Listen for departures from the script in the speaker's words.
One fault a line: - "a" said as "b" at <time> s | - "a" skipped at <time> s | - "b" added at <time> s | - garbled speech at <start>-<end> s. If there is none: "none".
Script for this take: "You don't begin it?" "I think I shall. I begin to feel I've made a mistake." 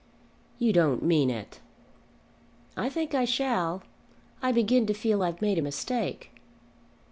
- "begin" said as "mean" at 1.0 s